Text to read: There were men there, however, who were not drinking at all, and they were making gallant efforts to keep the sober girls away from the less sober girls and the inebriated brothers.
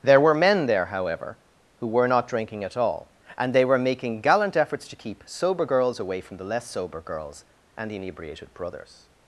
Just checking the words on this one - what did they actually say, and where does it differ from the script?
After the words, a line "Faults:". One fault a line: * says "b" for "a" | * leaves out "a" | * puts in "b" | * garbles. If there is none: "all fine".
There were men there, however, who were not drinking at all, and they were making gallant efforts to keep sober girls away from the less sober girls and the inebriated brothers.
Faults:
* leaves out "the"